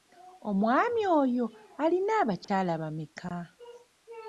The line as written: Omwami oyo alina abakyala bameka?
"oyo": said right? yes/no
yes